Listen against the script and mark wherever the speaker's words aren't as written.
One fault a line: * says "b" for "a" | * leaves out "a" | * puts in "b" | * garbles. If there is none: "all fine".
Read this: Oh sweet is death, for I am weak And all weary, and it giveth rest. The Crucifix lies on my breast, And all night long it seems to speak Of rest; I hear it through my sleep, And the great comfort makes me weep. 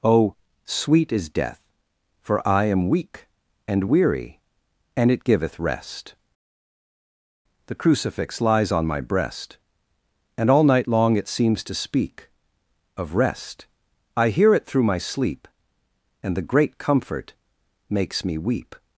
* leaves out "all"